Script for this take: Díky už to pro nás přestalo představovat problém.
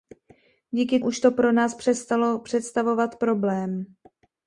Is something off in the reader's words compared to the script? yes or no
no